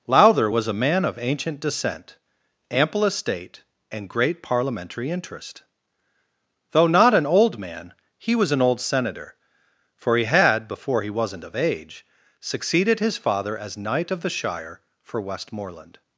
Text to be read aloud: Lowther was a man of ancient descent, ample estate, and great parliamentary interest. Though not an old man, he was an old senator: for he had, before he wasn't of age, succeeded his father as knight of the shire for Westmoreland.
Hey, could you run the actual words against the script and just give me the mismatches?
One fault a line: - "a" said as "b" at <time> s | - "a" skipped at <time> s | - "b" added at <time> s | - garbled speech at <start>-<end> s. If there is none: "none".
none